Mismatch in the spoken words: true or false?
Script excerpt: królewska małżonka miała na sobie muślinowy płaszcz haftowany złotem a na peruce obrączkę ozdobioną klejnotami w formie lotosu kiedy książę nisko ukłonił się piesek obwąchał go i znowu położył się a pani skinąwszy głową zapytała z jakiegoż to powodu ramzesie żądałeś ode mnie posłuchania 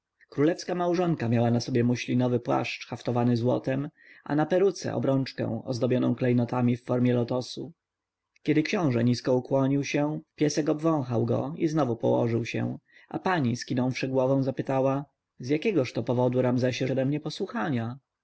true